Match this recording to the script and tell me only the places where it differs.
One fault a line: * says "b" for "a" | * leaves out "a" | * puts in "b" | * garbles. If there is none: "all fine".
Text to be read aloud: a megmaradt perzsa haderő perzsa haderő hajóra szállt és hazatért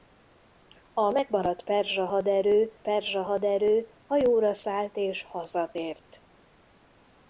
all fine